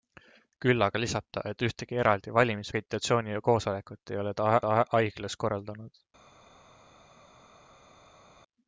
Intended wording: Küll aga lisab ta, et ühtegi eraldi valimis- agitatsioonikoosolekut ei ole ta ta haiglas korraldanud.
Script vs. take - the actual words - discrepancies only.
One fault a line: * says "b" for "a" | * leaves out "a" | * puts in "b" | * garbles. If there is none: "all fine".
all fine